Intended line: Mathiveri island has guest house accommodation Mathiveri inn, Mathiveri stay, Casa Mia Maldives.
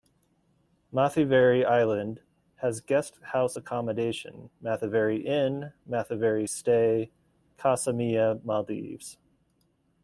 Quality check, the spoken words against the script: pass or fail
pass